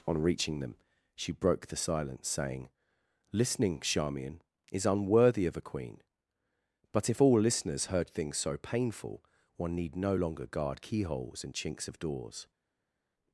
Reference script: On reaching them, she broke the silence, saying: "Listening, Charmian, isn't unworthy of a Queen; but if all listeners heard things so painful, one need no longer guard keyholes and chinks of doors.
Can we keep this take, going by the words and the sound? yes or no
no